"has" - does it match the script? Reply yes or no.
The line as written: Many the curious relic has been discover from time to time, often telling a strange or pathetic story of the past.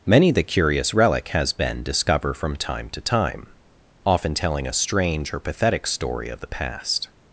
yes